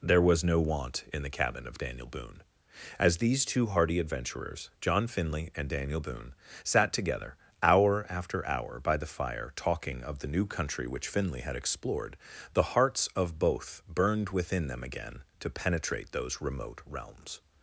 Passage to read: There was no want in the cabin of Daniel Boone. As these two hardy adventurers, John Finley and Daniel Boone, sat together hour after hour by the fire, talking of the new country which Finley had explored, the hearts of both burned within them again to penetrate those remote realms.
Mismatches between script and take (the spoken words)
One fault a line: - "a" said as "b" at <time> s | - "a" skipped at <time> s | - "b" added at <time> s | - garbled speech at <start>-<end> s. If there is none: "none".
none